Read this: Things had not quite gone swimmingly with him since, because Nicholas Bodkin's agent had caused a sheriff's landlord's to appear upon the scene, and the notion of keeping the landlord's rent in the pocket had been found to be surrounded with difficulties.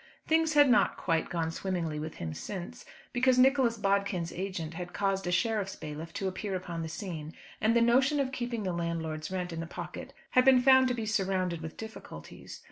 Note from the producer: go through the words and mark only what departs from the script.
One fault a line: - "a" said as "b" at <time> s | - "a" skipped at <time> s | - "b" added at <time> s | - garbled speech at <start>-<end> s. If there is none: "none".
- "landlord's" said as "bailiff" at 5.8 s